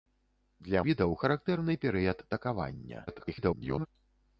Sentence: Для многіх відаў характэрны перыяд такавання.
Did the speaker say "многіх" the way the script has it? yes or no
no